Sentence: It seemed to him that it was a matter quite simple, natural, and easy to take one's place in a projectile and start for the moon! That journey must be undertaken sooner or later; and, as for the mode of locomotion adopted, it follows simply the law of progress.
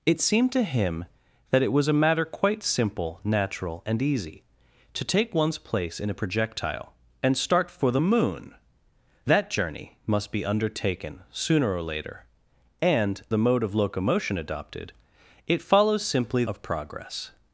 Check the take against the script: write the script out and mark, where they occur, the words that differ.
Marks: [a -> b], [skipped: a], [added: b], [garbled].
It seemed to him that it was a matter quite simple, natural, and easy to take one's place in a projectile and start for the moon! That journey must be undertaken sooner or later; and, [skipped: as for] the mode of locomotion adopted, it follows simply [skipped: the law] of progress.